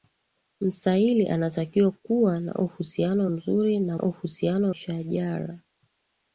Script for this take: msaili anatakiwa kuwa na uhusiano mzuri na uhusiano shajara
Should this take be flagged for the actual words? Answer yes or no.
no